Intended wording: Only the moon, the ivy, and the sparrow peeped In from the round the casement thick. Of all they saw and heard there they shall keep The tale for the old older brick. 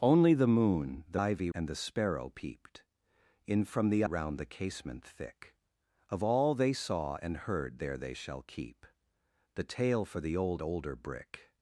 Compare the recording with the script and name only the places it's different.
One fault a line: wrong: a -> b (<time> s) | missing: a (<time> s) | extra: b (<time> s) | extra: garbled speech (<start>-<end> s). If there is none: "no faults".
no faults